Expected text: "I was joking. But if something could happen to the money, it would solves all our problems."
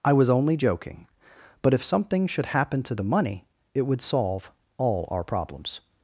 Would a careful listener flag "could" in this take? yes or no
yes